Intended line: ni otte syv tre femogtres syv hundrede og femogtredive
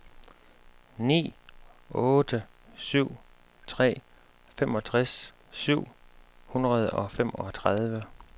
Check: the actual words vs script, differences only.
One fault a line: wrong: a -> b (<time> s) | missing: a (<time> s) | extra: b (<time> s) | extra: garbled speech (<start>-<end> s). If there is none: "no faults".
no faults